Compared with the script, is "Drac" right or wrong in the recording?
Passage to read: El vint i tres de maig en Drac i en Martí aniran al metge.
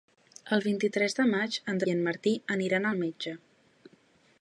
wrong